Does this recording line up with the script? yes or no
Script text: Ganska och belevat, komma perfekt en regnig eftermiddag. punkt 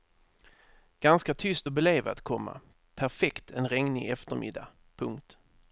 no